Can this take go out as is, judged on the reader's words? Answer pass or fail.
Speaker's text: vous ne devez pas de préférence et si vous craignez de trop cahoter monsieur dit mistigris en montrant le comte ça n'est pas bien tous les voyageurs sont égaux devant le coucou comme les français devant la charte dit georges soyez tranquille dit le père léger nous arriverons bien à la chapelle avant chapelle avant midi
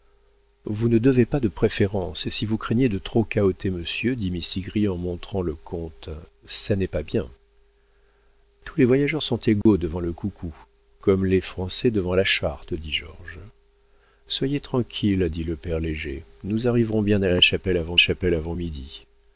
pass